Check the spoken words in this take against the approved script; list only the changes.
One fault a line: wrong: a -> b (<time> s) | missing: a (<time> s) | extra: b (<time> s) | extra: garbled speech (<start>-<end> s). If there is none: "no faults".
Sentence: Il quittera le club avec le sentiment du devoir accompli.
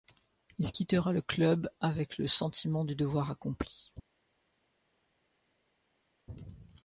no faults